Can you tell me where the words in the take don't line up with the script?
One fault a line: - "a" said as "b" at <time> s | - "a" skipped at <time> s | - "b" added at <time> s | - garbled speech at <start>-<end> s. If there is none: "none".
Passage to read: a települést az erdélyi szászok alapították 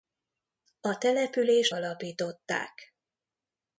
- "az erdélyi szászok" skipped at 1.8 s